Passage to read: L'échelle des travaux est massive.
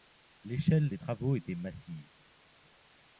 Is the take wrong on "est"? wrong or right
wrong